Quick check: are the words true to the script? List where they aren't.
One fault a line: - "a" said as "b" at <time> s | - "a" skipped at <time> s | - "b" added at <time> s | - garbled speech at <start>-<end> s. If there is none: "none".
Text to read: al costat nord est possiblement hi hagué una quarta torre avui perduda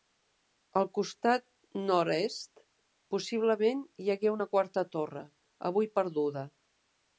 none